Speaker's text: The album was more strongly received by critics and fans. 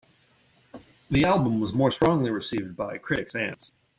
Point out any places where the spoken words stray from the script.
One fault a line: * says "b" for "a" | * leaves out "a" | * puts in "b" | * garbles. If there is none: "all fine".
* leaves out "and"